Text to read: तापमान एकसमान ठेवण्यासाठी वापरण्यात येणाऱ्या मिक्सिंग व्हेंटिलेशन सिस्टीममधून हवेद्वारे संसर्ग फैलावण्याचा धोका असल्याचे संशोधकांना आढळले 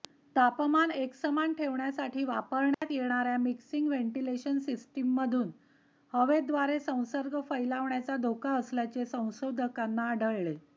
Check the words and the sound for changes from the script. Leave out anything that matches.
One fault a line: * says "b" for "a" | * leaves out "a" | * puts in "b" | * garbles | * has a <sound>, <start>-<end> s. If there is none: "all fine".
* has a dropout, 2.7-2.8 s